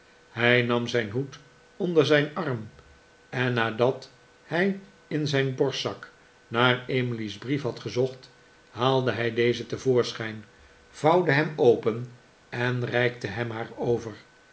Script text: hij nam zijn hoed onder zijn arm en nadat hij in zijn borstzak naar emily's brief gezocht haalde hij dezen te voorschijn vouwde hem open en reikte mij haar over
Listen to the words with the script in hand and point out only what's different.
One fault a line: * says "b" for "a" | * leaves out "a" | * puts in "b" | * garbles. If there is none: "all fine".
* puts in "had"
* says "hem" for "mij"